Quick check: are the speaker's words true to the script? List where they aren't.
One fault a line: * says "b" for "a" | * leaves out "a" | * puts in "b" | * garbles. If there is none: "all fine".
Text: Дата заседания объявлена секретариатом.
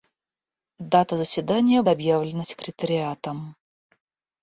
all fine